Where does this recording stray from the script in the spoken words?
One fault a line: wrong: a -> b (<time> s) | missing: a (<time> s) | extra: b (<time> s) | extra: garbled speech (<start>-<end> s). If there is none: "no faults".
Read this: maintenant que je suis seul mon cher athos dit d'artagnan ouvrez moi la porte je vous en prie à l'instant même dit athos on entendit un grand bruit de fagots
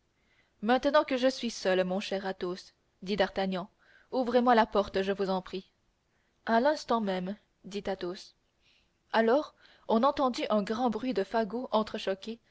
extra: alors (9.1 s)